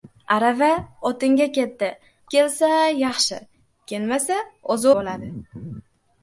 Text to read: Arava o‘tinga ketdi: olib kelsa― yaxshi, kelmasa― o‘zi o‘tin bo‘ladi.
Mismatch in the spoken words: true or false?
true